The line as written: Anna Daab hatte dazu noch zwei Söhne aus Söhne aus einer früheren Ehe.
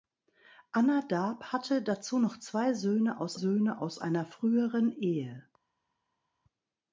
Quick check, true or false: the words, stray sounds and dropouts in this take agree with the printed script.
true